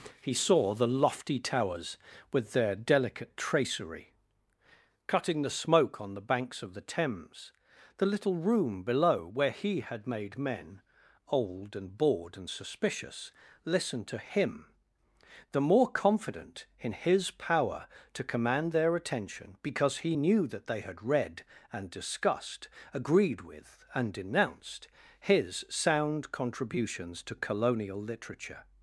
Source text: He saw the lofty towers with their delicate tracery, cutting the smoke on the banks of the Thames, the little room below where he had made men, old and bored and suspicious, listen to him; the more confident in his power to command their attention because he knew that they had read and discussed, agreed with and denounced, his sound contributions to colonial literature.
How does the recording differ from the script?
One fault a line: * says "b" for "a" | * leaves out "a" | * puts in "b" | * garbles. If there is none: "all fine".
all fine